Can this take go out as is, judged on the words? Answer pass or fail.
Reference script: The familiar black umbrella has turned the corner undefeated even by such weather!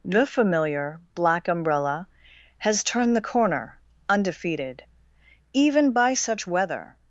pass